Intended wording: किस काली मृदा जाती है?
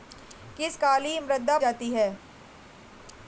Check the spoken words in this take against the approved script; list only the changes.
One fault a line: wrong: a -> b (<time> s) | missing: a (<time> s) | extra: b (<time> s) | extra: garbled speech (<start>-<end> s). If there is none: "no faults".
no faults